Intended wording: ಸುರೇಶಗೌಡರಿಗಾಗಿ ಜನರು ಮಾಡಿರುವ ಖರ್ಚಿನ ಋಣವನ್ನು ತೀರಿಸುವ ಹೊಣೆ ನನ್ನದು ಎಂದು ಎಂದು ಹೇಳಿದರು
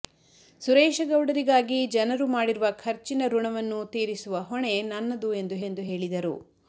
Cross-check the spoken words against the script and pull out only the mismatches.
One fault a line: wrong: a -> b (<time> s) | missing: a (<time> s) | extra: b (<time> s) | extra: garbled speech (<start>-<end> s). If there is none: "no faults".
no faults